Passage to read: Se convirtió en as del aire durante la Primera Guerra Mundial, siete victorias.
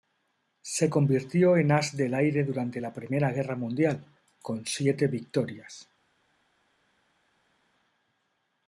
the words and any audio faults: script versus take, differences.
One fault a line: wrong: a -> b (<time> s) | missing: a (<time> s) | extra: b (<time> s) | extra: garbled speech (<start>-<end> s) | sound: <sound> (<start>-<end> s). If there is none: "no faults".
extra: con (4.4 s)